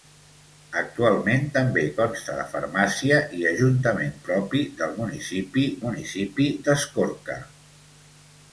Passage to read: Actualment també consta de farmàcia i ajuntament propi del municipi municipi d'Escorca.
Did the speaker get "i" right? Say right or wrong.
right